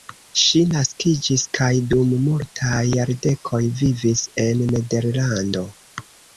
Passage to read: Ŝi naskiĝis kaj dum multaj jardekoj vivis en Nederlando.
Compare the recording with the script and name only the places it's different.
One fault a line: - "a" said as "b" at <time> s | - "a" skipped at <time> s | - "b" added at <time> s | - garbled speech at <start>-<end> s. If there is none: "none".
none